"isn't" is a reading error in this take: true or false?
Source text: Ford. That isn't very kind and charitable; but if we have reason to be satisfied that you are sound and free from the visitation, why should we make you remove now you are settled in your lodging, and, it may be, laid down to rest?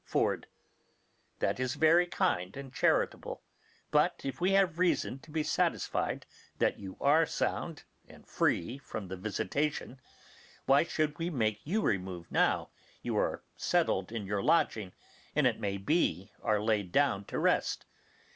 true